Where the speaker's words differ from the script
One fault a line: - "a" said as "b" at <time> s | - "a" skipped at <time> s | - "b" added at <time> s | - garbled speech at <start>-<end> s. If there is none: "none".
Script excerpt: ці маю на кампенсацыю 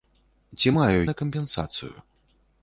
none